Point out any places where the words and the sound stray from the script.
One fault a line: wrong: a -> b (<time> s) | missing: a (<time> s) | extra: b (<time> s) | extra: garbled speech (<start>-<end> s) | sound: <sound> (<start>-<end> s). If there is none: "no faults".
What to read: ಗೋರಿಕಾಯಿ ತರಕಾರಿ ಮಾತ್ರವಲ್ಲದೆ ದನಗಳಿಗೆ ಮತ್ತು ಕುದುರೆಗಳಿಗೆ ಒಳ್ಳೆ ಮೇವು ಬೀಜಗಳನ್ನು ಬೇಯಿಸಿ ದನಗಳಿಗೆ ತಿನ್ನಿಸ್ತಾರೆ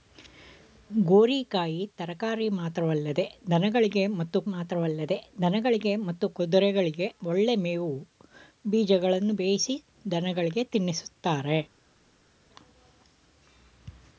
extra: ಮಾತ್ರವಲ್ಲದೆ ದನಗಳಿಗೆ ಮತ್ತು (4.5 s)